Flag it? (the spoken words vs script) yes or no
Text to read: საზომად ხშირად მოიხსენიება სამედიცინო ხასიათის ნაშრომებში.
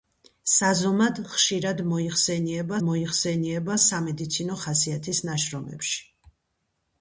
yes